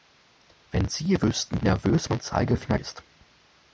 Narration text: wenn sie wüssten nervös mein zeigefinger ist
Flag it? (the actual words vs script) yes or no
no